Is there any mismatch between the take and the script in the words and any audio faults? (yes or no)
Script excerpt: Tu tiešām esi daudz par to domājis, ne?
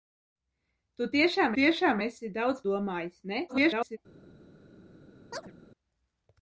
yes